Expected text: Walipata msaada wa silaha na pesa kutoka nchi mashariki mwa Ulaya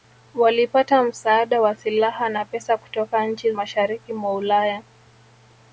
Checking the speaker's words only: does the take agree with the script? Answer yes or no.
yes